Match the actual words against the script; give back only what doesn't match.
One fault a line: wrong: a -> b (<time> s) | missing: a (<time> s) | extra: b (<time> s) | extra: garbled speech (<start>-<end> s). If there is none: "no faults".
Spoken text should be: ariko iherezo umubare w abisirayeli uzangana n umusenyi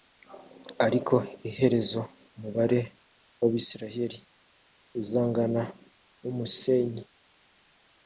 no faults